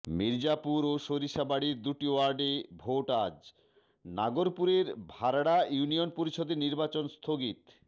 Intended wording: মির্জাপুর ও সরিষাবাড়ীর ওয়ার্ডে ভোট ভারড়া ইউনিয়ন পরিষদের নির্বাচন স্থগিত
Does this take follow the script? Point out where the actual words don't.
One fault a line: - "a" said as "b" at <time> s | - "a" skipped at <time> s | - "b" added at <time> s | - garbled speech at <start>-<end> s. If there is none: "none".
- "দুটি" added at 1.8 s
- "আজ নাগরপুরের" added at 3.2 s